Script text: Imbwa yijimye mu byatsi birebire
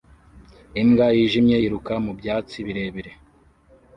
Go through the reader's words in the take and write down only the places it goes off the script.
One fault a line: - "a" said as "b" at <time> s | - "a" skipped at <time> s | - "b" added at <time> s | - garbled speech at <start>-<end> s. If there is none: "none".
- "yiruka" added at 1.6 s